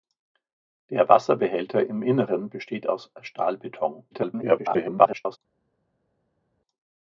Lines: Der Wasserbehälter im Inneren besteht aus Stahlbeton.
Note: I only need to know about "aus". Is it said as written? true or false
true